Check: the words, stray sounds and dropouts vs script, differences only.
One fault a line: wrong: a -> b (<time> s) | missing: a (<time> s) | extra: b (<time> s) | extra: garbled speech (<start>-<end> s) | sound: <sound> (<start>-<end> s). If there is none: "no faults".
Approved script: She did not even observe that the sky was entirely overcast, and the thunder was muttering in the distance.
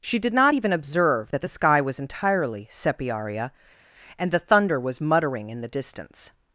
wrong: overcast -> sepiaria (2.7 s)